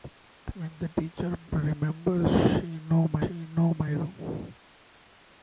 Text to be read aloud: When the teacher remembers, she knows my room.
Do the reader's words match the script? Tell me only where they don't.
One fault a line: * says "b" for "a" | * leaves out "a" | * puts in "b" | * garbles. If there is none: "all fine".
* puts in "she knows my"